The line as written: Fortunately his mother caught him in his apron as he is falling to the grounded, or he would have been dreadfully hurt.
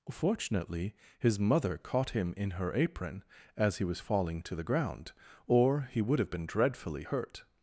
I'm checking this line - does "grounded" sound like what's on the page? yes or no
no